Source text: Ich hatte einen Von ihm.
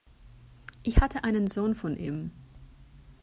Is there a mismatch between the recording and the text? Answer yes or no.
yes